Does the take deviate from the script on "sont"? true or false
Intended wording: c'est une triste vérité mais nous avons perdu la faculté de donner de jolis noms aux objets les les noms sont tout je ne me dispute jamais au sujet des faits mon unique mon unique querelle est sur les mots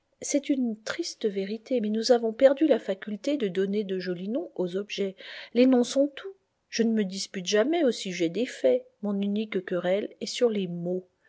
false